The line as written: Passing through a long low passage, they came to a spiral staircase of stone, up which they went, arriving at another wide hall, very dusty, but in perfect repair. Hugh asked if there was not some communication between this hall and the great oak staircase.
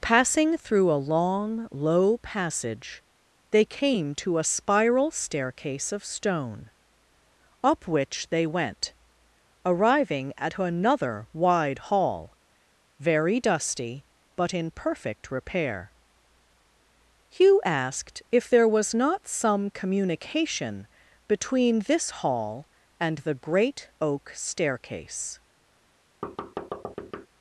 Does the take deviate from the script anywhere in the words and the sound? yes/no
yes